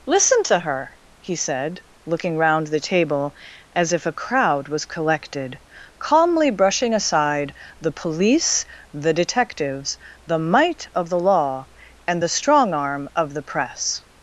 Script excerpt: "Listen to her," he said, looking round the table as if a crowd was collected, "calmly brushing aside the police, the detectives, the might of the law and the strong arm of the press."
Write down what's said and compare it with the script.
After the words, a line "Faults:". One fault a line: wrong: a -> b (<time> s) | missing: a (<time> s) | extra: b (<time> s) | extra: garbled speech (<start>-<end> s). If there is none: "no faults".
"Listen to her," he said, looking round the table as if a crowd was collected, "calmly brushing aside the police, the detectives, the might of the law and the strong arm of the press."
Faults:
no faults